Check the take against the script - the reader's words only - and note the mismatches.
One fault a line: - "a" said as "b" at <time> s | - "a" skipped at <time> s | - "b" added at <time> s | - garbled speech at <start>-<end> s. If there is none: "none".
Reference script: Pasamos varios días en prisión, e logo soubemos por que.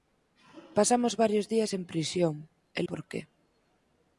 - "logo soubemos" skipped at 2.8 s